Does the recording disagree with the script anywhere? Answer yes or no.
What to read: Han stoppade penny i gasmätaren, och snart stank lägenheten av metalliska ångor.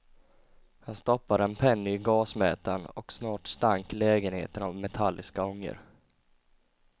yes